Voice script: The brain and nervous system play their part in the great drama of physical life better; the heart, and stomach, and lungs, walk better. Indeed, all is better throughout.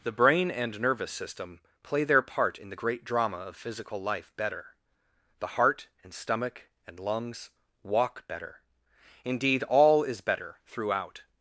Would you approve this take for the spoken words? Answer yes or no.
yes